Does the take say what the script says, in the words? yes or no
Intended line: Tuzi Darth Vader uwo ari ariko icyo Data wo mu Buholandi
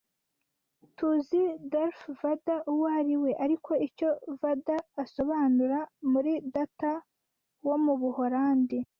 no